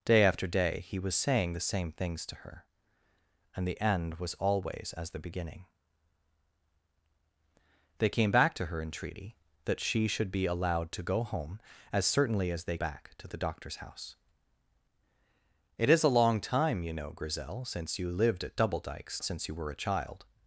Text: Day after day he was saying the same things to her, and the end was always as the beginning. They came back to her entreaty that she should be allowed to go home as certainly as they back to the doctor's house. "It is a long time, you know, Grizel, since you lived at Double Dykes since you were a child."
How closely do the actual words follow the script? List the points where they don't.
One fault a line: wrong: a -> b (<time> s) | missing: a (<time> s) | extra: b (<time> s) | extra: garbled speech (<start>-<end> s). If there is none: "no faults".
no faults